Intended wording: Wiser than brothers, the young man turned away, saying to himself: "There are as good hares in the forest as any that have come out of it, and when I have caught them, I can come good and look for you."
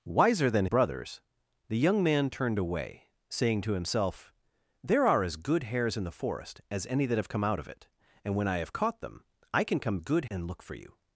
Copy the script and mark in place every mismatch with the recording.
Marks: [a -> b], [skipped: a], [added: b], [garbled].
Wiser than brothers, the young man turned away, saying to himself: "There are as good hares in the forest as any that have come out of it, and when I have caught them, I can come good and look for you."